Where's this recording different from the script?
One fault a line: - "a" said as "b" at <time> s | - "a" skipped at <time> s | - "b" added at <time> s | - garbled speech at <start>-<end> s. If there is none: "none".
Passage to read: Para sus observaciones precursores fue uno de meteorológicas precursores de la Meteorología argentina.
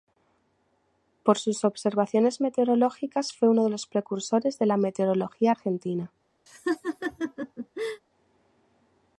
- "Para" said as "Por" at 1.2 s
- "precursores" said as "meteorológicas" at 2.4 s
- "meteorológicas" said as "los" at 3.7 s